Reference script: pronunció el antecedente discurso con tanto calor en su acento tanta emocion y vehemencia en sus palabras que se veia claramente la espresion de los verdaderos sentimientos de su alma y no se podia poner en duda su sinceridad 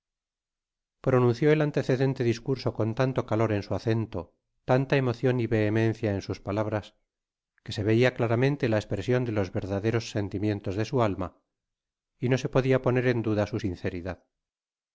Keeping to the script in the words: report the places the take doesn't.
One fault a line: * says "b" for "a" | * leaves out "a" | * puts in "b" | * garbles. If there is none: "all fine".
all fine